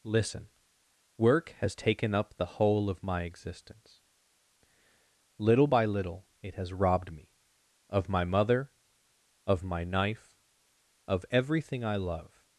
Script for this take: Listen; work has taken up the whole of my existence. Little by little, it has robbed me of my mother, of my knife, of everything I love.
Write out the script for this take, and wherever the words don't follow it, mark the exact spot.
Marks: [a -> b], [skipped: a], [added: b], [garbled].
Listen; work has taken up the whole of my existence. Little by little, it has robbed me of my mother, of my knife, of everything I love.